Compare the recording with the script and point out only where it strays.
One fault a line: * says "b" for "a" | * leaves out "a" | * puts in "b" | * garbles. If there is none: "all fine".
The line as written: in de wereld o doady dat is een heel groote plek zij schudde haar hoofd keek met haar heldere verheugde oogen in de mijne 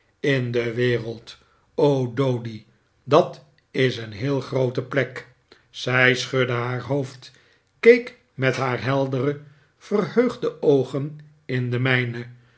all fine